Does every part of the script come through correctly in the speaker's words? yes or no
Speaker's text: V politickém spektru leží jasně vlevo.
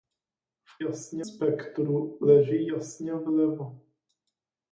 no